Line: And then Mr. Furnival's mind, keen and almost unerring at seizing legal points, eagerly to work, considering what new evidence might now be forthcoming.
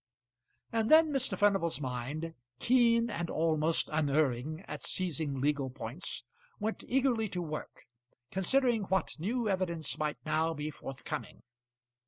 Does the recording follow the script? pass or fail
fail